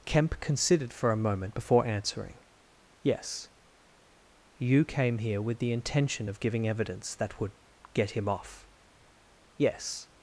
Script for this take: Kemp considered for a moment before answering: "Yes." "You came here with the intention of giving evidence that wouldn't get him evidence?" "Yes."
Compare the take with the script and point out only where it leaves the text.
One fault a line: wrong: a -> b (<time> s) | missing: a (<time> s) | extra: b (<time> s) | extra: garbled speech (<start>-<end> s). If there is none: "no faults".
wrong: wouldn't -> would (7.4 s)
wrong: evidence -> off (8.3 s)